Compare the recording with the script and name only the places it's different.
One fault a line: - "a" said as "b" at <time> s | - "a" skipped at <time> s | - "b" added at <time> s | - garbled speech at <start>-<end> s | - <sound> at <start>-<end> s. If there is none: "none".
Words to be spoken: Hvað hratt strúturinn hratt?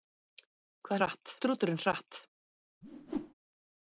- whoosh at 2.8-3.3 s